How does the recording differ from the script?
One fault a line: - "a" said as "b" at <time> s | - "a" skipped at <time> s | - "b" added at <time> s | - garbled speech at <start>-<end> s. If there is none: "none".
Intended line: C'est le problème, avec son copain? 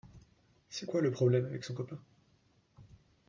- "quoi" added at 0.9 s